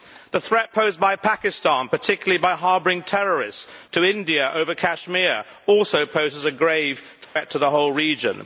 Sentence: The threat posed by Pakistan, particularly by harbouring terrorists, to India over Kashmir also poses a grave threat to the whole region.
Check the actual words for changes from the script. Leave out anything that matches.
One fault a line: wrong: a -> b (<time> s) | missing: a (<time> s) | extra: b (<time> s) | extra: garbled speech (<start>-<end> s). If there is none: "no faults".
no faults